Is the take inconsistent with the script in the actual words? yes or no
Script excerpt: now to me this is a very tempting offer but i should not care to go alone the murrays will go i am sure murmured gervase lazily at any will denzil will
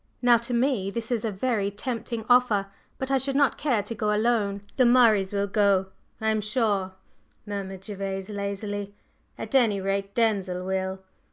yes